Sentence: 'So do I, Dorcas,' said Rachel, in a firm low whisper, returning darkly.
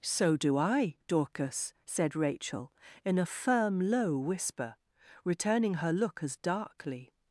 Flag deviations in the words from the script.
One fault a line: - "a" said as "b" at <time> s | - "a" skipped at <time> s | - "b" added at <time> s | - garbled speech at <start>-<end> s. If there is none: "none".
- "her look as" added at 5.7 s